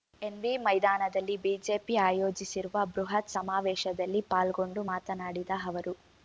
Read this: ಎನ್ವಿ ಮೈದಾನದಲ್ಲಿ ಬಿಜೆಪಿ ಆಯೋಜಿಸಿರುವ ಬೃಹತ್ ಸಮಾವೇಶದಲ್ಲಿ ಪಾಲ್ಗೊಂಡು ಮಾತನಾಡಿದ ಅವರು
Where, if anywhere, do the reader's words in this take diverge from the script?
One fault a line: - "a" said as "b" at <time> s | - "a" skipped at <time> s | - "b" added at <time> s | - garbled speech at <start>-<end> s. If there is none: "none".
none